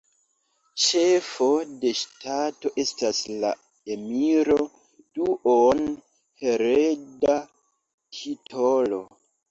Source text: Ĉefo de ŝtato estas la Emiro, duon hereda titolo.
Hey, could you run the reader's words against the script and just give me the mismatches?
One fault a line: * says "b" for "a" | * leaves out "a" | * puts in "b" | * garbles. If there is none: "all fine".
all fine